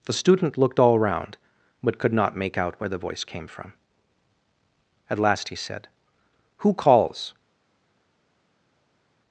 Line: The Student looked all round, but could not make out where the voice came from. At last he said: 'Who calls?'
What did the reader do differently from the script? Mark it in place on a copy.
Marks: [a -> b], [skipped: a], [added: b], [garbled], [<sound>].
The Student looked all round, but could not make out where the voice came from. At last he said: 'Who calls?'